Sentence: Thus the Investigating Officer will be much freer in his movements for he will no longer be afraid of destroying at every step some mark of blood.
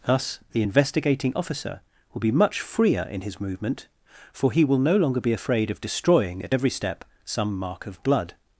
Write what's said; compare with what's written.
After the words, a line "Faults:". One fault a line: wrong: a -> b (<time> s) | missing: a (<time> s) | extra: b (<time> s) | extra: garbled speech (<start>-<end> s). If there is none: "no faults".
Thus the Investigating Officer will be much freer in his movement for he will no longer be afraid of destroying at every step some mark of blood.
Faults:
wrong: movements -> movement (3.4 s)